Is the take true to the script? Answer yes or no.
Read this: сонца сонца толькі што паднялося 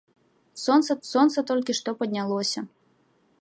yes